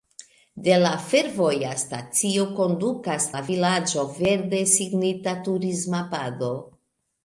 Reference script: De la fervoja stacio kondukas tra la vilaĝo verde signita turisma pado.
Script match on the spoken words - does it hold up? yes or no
no